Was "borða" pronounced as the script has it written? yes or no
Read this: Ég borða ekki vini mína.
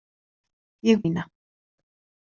no